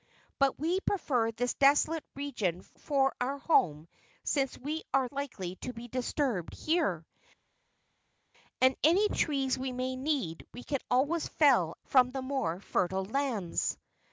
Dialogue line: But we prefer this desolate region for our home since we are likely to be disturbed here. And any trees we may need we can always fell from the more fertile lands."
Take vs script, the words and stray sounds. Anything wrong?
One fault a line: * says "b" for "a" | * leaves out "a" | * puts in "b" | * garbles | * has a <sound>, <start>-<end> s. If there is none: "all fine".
all fine